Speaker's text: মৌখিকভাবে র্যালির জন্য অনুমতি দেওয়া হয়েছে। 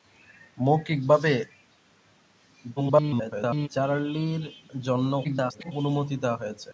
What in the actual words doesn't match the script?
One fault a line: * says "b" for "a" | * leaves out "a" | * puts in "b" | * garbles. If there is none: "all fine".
* garbles
* garbles